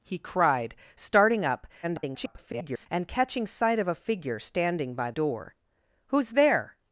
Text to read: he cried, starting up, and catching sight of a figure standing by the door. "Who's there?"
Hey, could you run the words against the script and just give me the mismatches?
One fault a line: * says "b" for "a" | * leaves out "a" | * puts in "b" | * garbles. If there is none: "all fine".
* garbles
* leaves out "the"